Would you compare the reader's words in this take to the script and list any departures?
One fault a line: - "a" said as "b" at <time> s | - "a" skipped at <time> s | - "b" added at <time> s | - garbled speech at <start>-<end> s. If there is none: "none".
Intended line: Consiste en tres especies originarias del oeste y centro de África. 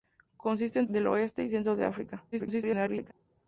- "tres especies originarias" skipped at 0.9 s
- garbled speech at 2.3-3.1 s